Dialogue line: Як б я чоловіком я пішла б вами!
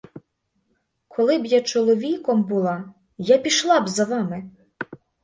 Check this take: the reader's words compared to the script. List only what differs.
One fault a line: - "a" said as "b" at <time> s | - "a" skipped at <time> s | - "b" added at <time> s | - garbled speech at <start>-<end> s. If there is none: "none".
- "Як" said as "Коли" at 1.1 s
- "була" added at 2.4 s
- "за" added at 3.9 s